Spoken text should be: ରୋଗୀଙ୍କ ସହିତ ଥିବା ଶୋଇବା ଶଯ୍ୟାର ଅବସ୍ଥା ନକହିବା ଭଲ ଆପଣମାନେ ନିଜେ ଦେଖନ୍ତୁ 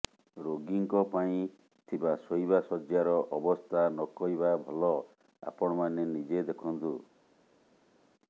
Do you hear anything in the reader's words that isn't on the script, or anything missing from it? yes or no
yes